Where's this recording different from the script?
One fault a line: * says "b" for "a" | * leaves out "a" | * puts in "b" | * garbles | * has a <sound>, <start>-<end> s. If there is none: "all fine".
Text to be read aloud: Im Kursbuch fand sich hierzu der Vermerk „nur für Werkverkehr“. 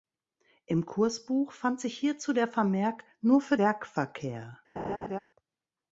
* has a laugh, 4.8-5.2 s